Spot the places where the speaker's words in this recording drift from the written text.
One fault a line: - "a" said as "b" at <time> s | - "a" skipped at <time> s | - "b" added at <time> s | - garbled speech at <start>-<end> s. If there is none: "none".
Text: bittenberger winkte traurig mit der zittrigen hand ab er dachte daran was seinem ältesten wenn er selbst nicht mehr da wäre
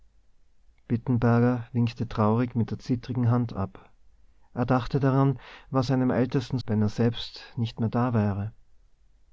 none